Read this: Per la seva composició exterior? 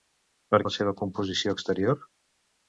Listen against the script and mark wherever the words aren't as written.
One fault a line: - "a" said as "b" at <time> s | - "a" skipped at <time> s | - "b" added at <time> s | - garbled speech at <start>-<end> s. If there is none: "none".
none